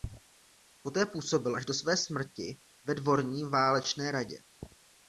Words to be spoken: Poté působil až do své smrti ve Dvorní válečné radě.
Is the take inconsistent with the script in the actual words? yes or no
no